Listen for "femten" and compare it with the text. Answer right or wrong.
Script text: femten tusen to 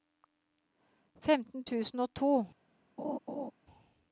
right